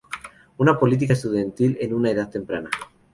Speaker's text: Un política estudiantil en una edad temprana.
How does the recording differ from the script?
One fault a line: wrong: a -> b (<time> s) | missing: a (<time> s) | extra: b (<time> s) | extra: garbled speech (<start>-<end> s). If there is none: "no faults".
wrong: Un -> Una (0.6 s)